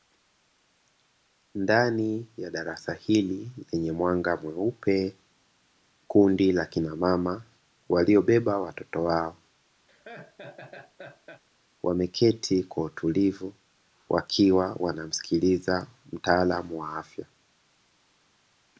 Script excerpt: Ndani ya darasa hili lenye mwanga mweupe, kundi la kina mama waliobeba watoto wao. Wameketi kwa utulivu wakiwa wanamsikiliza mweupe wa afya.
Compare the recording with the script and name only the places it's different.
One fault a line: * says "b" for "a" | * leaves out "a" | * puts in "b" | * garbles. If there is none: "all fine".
* says "mtaalamu" for "mweupe"